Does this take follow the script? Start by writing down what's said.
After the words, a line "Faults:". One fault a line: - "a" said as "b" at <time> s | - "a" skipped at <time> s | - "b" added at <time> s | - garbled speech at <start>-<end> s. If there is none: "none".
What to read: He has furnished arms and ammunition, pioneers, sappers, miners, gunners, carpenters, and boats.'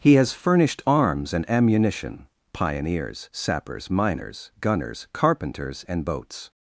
He has furnished arms and ammunition, pioneers, sappers, miners, gunners, carpenters, and boats.'
Faults:
none